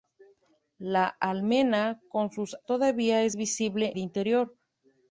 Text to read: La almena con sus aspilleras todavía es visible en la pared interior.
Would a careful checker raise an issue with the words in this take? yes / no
yes